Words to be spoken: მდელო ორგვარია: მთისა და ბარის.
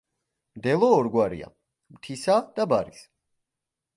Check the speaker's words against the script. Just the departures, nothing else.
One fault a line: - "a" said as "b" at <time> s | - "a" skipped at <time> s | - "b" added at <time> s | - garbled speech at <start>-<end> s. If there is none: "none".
none